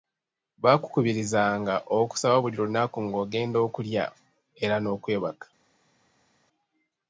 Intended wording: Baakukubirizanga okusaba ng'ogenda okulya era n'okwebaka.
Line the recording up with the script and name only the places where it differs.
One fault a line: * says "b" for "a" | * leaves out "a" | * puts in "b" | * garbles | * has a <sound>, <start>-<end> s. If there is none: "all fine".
* puts in "buli lunaku"